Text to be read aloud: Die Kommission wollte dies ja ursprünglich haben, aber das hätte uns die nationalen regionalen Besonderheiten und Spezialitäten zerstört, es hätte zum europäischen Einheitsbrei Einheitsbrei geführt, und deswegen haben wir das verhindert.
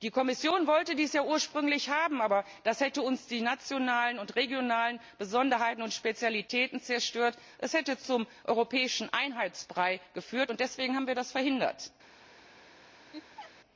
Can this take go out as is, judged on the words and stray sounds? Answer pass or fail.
fail